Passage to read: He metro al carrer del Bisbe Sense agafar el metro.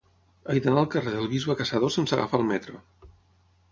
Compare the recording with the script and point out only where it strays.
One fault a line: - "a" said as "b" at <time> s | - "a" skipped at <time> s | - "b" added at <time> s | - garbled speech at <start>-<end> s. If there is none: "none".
- "metro" said as "d'anar" at 0.7 s
- "Caçador" added at 1.6 s